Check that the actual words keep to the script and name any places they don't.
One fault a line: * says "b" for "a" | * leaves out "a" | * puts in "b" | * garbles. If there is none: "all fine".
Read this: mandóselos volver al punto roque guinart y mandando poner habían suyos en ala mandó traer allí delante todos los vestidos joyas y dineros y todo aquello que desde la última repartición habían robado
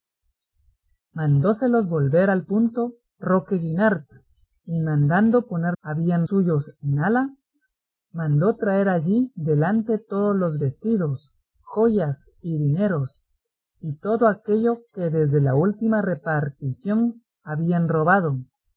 all fine